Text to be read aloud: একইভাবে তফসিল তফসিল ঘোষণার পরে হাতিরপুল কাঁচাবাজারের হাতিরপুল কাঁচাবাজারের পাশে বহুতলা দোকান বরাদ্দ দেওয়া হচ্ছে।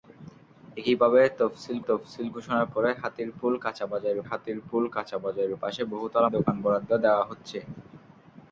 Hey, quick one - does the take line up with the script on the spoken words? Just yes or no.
yes